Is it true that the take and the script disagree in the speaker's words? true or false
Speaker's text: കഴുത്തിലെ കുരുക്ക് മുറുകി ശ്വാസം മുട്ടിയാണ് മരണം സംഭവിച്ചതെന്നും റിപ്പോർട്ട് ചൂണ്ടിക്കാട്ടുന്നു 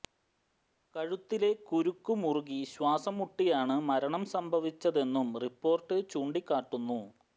false